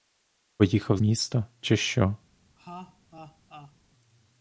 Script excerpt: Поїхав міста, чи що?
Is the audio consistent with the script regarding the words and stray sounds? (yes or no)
no